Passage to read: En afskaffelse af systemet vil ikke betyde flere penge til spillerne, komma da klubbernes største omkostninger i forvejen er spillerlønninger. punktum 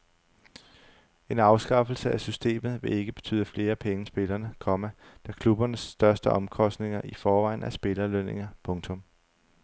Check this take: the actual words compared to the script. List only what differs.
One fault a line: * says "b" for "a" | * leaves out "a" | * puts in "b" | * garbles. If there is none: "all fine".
* leaves out "til"